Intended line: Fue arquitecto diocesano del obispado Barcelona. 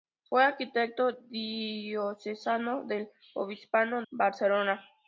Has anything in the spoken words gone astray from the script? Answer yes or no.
no